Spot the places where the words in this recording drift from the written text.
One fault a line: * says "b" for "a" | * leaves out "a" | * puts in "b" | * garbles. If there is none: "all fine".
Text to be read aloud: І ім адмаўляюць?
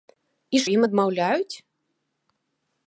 all fine